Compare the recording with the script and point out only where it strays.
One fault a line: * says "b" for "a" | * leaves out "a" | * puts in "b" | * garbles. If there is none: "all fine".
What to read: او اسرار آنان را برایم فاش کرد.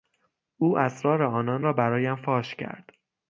all fine